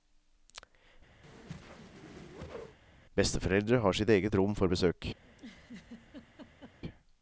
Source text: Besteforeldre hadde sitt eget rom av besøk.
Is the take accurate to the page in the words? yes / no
no